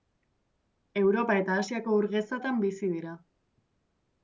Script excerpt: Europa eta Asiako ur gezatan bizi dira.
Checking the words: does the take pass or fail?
pass